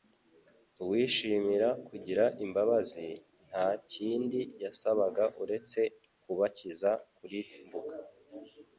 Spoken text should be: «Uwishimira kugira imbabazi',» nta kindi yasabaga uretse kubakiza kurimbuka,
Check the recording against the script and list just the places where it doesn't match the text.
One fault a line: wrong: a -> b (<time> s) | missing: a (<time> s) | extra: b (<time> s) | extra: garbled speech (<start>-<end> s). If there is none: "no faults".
no faults